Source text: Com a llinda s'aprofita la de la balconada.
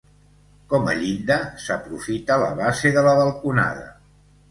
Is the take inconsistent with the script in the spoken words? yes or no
yes